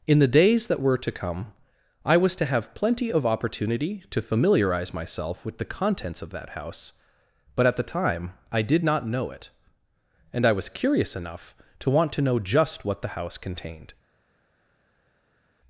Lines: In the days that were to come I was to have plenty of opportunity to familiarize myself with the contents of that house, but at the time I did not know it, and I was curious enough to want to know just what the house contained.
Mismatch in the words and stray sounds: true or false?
false